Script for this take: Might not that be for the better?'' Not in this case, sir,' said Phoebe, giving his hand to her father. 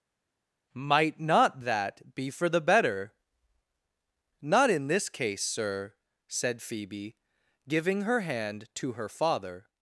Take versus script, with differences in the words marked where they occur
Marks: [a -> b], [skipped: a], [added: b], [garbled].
Might not that be for the better?'' Not in this case, sir,' said Phoebe, giving [his -> her] hand to her father.